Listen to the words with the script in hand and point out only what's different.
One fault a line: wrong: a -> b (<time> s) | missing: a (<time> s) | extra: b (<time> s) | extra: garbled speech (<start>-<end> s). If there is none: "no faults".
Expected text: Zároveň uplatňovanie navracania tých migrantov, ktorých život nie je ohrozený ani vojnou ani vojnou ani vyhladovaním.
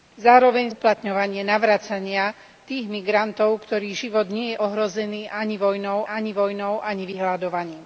no faults